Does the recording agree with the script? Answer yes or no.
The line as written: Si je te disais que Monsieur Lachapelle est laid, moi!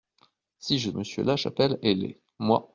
no